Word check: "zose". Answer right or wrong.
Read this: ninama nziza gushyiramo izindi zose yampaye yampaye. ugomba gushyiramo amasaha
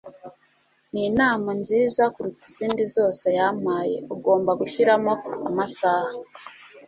right